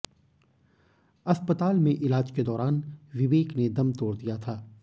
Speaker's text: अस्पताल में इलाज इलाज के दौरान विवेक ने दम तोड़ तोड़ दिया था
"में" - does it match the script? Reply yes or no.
yes